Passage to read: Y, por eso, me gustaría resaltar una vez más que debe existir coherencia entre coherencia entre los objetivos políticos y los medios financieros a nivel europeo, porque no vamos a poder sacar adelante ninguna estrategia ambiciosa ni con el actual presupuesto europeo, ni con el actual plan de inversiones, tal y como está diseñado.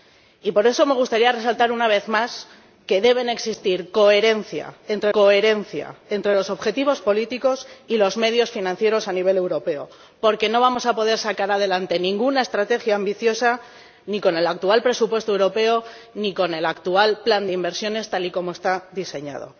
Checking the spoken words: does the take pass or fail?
pass